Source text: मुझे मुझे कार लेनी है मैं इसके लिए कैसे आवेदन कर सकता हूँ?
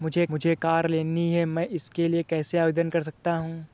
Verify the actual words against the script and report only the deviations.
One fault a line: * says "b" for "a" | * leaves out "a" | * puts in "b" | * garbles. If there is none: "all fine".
all fine